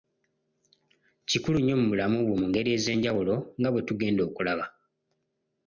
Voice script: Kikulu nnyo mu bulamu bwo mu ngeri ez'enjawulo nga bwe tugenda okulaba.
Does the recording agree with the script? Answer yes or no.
yes